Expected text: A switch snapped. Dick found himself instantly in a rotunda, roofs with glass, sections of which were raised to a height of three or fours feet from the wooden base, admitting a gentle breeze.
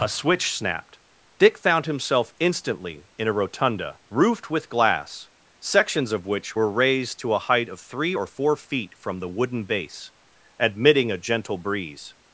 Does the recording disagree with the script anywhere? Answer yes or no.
yes